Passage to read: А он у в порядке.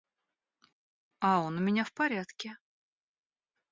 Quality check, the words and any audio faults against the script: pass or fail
fail